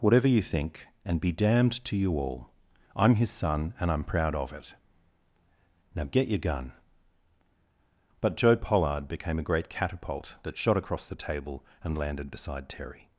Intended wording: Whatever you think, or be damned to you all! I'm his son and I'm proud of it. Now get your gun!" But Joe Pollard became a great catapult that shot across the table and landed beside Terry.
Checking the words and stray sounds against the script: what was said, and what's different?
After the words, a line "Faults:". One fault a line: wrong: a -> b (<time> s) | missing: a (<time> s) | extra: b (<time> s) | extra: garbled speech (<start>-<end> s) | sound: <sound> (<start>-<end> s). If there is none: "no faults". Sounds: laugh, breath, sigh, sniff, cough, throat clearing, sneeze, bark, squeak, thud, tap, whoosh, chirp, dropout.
Whatever you think, and be damned to you all! I'm his son and I'm proud of it. Now get your gun!" But Joe Pollard became a great catapult that shot across the table and landed beside Terry.
Faults:
wrong: or -> and (1.1 s)